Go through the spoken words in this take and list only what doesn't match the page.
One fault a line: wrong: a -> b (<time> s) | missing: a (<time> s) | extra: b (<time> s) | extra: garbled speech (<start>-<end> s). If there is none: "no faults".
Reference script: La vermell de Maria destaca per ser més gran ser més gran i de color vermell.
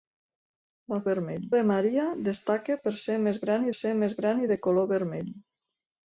no faults